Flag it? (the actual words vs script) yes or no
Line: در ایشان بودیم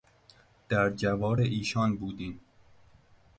yes